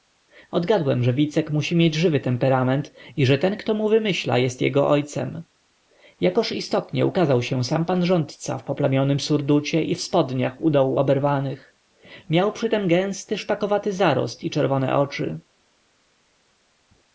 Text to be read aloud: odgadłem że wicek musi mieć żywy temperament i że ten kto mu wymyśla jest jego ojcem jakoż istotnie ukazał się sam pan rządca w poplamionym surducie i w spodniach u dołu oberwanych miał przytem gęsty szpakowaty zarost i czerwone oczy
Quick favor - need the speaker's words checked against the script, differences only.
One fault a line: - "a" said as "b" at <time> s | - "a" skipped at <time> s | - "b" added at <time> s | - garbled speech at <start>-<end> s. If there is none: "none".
none